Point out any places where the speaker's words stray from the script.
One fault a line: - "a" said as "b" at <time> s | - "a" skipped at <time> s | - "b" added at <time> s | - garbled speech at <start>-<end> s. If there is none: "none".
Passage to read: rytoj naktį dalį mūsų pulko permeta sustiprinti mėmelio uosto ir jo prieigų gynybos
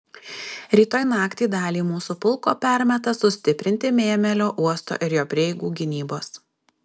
none